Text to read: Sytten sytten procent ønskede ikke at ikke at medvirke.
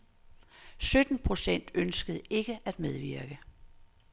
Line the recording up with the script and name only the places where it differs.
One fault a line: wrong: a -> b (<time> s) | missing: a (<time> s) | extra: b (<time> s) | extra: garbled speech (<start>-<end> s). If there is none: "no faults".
missing: sytten (1.2 s)
missing: ikke at (2.8 s)